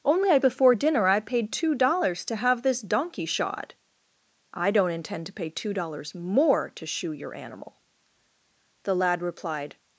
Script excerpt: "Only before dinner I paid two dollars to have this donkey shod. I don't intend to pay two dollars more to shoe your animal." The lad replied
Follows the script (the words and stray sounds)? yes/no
yes